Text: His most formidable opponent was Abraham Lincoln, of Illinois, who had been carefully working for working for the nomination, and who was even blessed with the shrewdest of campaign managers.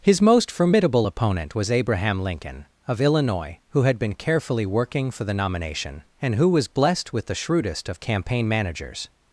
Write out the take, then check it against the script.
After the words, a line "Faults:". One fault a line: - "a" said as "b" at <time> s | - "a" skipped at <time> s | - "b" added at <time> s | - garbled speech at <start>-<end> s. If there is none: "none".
His most formidable opponent was Abraham Lincoln, of Illinois, who had been carefully working for the nomination, and who was blessed with the shrewdest of campaign managers.
Faults:
- "working for" skipped at 5.2 s
- "even" skipped at 6.7 s